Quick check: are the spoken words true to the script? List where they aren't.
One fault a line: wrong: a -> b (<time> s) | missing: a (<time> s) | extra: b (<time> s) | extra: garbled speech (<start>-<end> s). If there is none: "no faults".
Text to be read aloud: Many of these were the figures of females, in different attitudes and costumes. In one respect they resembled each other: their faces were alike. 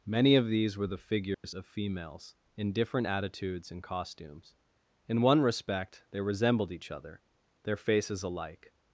missing: were (8.2 s)